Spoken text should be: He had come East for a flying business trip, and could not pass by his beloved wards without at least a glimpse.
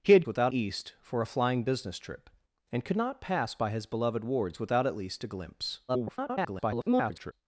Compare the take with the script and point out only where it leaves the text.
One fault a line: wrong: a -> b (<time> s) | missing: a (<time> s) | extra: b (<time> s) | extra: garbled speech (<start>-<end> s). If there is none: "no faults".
wrong: come -> without (0.3 s)
extra: garbled speech (5.9-7.3 s)